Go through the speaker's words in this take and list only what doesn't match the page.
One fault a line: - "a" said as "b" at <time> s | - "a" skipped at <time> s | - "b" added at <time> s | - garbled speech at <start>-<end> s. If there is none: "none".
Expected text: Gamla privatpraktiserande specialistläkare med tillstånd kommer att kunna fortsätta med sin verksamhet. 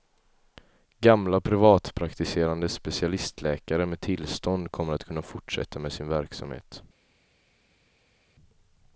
none